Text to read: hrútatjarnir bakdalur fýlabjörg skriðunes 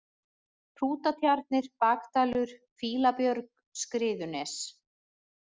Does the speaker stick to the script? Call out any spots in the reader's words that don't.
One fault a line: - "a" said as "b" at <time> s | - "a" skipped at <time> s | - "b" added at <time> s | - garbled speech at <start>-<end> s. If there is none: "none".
none